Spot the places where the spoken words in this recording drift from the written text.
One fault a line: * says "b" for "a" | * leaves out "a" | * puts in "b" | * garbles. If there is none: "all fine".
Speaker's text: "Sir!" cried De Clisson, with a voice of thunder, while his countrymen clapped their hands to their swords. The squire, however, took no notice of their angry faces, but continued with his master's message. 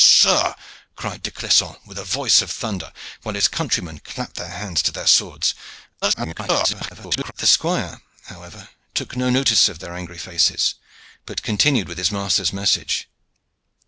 * garbles